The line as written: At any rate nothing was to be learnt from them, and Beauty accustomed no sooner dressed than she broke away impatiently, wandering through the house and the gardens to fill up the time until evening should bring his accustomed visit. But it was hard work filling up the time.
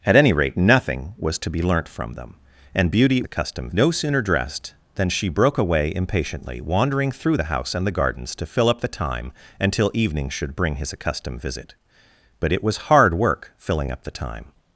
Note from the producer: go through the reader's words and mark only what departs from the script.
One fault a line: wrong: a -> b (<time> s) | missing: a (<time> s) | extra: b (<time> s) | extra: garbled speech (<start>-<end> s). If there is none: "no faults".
no faults